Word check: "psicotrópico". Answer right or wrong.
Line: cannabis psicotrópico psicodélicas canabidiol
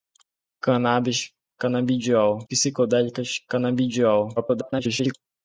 wrong